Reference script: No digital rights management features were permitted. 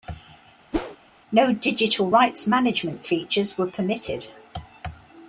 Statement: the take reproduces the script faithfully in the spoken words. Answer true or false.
true